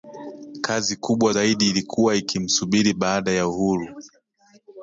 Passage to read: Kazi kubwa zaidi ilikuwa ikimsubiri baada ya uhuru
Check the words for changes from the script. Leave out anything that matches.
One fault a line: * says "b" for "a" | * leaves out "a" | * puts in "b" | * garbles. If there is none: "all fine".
all fine